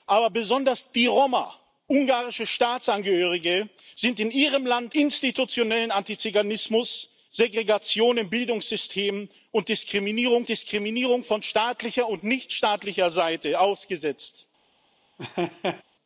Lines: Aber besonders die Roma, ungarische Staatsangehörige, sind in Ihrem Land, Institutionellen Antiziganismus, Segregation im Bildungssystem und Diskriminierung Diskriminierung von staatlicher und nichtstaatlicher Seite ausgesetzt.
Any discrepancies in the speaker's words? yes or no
no